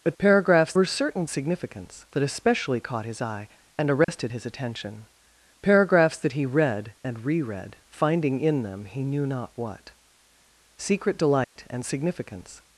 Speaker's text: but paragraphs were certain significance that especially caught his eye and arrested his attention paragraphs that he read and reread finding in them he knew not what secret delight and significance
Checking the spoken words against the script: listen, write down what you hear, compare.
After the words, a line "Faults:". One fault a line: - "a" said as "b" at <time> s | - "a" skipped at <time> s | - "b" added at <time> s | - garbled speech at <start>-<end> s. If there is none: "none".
but paragraphs were certain significance that especially caught his eye and arrested his attention paragraphs that he read and reread finding in them he knew not what secret delight and significance
Faults:
none